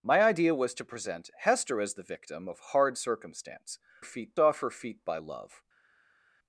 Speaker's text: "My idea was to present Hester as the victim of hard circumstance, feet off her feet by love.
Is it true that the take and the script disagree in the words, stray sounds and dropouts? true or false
false